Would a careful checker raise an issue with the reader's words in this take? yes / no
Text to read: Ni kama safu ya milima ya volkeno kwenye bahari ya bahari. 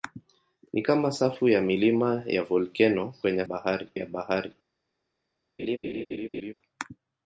no